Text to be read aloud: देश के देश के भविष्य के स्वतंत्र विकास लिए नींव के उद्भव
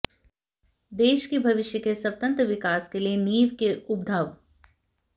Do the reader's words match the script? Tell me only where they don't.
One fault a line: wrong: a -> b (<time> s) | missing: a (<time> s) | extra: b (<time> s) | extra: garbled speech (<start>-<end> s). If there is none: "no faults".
missing: देश के (1.4 s)
extra: के (2.9 s)